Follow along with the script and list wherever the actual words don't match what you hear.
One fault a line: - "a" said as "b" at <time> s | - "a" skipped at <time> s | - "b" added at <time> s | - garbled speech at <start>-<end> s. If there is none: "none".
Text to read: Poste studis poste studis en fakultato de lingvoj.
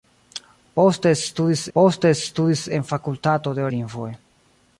none